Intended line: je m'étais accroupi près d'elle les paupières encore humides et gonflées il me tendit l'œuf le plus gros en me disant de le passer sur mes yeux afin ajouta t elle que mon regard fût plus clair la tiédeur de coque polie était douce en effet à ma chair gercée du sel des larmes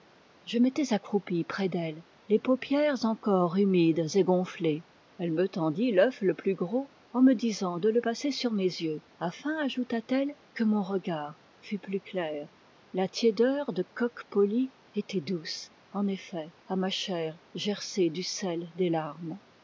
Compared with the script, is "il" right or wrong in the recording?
wrong